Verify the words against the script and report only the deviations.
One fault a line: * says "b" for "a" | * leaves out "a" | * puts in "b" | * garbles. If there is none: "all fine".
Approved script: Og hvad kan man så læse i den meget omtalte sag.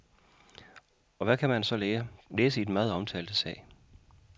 all fine